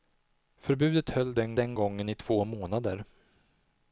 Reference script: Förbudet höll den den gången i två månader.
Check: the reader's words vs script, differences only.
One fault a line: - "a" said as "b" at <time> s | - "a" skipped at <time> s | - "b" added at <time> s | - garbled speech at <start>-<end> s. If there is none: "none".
none